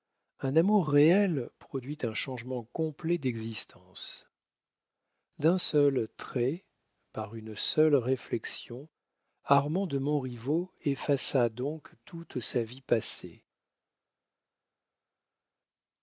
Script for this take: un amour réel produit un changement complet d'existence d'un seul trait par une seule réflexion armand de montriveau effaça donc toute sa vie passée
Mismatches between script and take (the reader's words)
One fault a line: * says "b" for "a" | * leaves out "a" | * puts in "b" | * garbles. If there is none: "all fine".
all fine